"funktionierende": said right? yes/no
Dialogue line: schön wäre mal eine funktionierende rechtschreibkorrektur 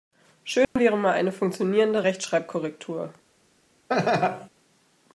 yes